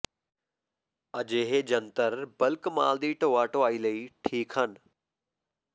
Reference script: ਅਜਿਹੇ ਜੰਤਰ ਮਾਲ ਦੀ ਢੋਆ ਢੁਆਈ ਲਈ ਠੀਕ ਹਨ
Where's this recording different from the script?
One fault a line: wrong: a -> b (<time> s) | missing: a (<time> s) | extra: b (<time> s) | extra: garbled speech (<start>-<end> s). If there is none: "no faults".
extra: ਬਲਕ (2.4 s)